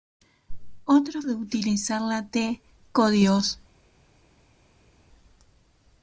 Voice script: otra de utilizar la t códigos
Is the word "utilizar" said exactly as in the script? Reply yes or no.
yes